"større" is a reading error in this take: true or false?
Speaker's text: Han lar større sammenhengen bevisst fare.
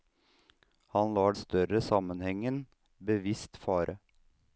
false